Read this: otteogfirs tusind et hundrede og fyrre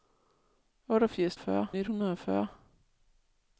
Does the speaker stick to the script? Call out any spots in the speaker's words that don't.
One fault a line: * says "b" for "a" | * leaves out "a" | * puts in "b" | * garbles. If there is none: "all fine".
* says "fyrre" for "tusind"